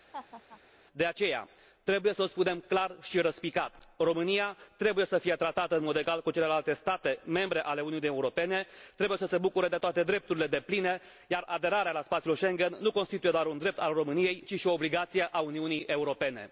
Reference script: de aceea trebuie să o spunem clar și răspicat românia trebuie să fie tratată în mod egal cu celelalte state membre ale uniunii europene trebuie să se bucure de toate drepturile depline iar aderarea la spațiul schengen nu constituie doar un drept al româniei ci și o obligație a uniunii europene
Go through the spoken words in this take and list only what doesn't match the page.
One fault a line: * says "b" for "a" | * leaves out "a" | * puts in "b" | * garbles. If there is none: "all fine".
all fine